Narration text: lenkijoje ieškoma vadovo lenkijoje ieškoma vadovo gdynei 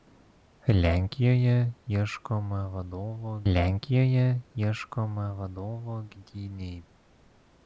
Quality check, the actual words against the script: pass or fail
pass